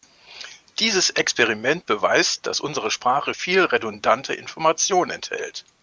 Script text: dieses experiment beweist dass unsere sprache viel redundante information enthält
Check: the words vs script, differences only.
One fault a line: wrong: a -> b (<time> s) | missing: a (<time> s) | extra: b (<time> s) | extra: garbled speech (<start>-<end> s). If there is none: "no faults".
no faults